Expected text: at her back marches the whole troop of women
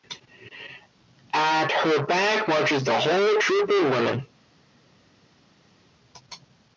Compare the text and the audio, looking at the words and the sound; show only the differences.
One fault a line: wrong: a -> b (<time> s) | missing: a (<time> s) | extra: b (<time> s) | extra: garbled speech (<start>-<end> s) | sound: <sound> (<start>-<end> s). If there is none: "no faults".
no faults